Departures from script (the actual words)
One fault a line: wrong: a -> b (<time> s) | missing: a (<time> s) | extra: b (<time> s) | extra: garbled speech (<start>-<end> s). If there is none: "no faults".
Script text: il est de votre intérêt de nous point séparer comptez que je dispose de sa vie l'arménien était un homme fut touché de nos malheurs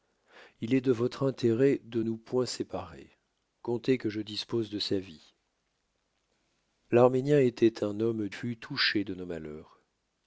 no faults